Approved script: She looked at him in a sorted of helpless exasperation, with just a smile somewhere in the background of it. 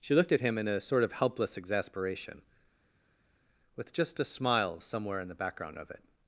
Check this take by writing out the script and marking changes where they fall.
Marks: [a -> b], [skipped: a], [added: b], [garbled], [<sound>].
She looked at him in a [sorted -> sort] of helpless exasperation, with just a smile somewhere in the background of it.